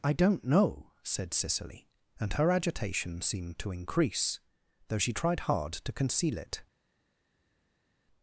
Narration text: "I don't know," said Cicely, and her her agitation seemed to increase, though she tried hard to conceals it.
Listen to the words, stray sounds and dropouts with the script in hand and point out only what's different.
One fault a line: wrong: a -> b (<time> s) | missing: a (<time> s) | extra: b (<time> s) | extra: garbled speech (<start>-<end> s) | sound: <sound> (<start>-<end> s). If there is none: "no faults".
missing: her (2.5 s)
wrong: conceals -> conceal (5.9 s)